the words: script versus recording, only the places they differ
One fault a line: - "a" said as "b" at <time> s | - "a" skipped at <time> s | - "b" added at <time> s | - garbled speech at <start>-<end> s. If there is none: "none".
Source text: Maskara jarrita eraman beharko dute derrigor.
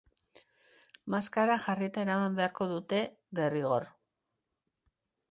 none